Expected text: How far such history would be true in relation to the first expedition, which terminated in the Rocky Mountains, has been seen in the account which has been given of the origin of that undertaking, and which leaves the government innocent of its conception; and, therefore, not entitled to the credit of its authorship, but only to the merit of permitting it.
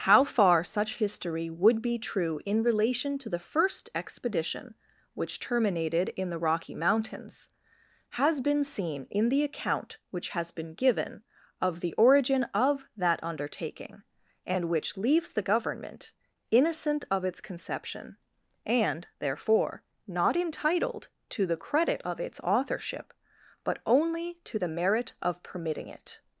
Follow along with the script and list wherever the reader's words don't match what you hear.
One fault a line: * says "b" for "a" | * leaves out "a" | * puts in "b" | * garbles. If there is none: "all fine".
all fine